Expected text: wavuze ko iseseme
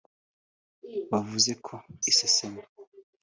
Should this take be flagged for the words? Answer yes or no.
no